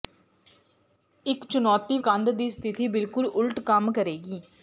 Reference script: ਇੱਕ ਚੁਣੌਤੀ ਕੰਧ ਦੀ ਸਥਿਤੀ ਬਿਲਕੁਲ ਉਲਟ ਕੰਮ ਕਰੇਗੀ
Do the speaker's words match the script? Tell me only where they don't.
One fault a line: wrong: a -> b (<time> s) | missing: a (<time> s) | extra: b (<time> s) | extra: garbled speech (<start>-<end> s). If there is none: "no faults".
no faults